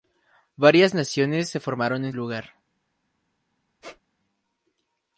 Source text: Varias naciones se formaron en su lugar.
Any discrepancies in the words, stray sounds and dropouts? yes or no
yes